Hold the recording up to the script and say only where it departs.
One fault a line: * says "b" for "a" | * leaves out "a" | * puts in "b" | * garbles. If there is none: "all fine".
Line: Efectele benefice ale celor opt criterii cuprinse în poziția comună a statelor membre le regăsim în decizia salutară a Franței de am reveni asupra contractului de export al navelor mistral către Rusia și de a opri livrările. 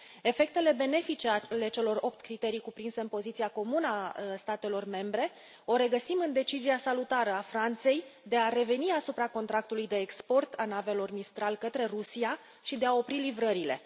* says "a" for "am"